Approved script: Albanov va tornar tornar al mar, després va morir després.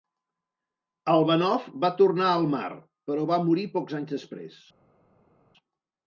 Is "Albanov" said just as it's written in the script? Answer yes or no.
yes